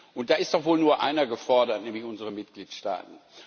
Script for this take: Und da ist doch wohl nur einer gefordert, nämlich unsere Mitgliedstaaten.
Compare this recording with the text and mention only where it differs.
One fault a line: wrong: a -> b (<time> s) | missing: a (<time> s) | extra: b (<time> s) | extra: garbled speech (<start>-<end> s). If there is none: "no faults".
no faults